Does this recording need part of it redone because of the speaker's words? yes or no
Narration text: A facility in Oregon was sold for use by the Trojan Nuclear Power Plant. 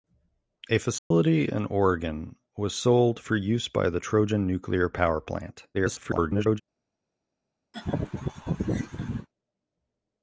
yes